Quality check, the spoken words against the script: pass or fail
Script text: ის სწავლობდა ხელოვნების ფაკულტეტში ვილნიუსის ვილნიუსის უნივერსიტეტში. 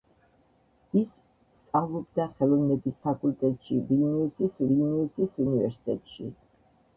pass